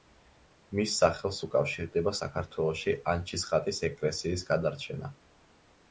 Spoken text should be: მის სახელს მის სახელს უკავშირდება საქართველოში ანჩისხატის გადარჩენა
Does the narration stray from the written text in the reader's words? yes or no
yes